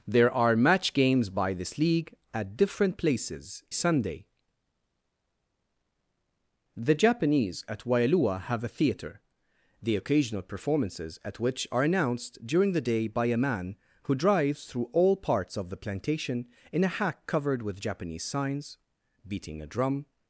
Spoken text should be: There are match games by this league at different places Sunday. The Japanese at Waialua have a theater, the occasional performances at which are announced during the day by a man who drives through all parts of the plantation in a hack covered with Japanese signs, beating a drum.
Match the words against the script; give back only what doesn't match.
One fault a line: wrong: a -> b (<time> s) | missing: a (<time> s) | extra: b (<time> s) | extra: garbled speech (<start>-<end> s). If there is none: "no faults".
no faults